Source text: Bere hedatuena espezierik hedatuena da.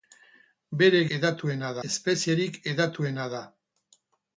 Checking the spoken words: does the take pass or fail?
pass